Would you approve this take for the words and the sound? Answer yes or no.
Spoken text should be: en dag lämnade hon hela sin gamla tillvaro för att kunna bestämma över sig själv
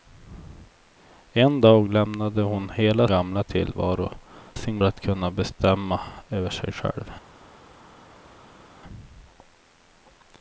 no